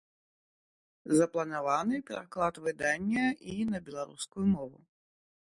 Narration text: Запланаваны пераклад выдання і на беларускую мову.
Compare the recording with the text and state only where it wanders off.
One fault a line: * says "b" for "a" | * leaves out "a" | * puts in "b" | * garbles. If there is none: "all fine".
all fine